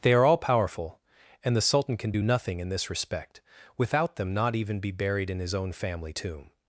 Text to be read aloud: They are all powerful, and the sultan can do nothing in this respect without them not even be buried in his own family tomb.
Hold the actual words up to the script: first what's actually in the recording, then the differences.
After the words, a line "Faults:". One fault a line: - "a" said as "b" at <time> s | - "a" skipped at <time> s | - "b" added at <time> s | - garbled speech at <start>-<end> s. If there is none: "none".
They are all powerful, and the sultan can do nothing in this respect without them not even be buried in his own family tomb.
Faults:
none